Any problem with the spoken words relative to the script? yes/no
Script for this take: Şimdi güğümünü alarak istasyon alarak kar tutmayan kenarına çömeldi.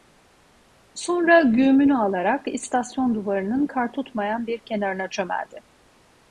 yes